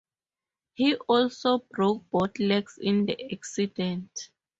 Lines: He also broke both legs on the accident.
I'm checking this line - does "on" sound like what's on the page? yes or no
no